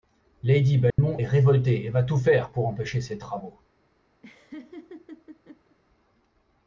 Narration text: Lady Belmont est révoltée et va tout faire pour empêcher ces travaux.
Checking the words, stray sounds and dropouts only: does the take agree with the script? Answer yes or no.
no